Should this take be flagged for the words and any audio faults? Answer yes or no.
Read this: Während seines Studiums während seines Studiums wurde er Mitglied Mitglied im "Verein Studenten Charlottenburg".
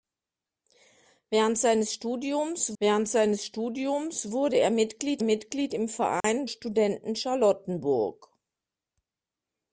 yes